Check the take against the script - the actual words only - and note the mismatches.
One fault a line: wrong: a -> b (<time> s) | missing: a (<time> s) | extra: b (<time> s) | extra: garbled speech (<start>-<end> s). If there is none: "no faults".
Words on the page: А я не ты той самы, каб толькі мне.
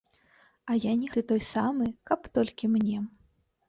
no faults